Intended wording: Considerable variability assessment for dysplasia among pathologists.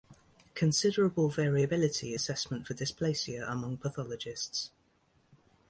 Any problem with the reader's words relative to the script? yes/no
no